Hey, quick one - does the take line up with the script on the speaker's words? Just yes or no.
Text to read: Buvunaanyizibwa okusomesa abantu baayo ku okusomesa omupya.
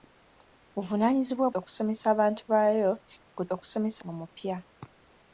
yes